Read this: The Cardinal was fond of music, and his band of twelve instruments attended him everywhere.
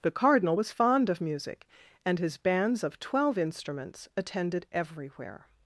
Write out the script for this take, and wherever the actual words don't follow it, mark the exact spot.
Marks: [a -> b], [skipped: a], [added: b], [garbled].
The Cardinal was fond of music, and his [band -> bands] of twelve instruments attended [skipped: him] everywhere.